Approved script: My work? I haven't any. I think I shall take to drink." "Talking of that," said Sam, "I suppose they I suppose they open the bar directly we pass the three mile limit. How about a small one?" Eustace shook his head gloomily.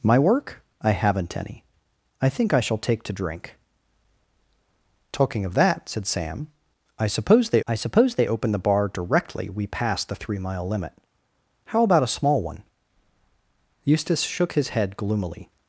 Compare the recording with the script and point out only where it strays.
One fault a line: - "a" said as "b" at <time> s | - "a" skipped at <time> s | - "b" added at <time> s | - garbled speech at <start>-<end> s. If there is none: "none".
none